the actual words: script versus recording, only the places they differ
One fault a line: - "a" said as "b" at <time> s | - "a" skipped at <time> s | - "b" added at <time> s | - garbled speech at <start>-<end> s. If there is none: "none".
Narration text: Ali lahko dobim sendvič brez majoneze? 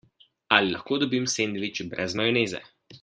none